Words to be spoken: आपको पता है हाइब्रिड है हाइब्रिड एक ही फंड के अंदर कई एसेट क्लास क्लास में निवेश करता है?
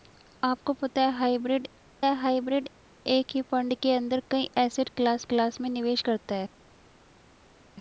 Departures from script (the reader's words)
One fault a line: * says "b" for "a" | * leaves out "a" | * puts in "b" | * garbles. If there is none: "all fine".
all fine